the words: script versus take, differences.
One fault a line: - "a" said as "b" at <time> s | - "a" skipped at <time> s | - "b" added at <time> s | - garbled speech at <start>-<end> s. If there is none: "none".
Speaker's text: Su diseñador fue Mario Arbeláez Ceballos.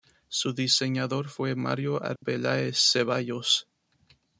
none